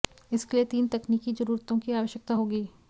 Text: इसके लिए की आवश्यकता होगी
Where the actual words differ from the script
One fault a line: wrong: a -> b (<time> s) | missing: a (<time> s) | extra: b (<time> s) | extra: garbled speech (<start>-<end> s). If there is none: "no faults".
extra: तीन तकनीकी जरूरतों (0.7 s)